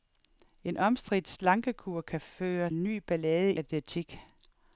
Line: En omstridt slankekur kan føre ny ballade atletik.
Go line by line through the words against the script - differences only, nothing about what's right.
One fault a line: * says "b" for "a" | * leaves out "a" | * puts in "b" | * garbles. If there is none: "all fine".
all fine